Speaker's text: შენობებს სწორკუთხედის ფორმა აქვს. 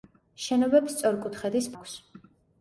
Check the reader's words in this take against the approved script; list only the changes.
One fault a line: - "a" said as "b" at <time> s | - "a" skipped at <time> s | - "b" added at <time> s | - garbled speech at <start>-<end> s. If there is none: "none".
- "ფორმა" skipped at 1.7 s